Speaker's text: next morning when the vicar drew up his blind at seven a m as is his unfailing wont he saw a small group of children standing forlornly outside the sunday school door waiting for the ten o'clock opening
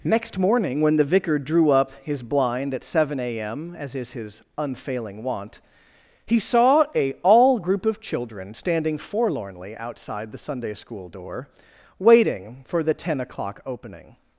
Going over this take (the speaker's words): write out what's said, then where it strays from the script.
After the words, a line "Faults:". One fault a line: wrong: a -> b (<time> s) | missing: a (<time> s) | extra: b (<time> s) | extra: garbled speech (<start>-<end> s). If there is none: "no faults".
next morning when the vicar drew up his blind at seven a m as is his unfailing wont he saw a all group of children standing forlornly outside the sunday school door waiting for the ten o'clock opening
Faults:
wrong: small -> all (7.2 s)